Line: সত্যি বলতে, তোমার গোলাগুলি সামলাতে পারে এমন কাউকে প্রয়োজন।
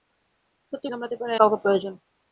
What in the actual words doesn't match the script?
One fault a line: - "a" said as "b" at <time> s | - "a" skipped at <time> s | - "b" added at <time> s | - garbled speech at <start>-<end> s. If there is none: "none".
- "বলতে তোমার গোলাগুলি" skipped at 0.9 s
- "এমন" skipped at 1.3 s